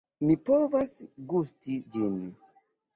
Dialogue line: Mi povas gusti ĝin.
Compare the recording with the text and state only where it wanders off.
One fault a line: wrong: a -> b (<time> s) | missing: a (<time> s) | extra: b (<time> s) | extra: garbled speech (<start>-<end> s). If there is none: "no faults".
no faults